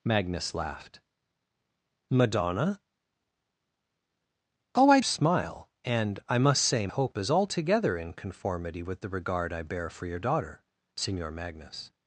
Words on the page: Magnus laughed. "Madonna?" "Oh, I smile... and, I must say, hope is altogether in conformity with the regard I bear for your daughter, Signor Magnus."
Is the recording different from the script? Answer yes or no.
no